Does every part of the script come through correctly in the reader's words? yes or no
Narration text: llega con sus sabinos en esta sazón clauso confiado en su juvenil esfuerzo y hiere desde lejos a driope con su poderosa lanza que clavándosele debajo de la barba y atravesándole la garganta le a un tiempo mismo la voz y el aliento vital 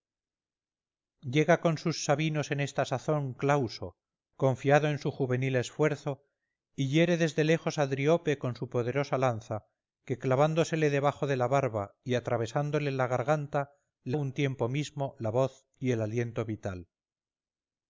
yes